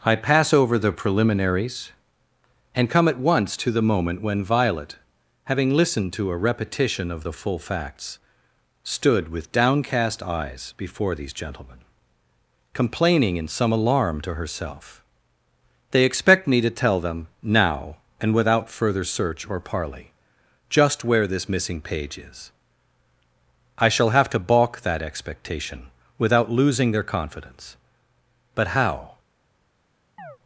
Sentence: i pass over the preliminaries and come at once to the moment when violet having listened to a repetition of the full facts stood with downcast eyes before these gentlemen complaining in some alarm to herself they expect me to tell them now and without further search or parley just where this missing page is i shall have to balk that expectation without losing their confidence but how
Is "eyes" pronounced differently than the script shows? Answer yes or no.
no